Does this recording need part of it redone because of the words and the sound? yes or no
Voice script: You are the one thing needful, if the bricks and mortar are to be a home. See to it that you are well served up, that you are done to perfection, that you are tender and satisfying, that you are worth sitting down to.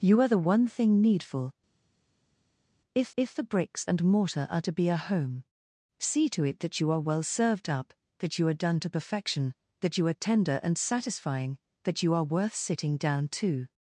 yes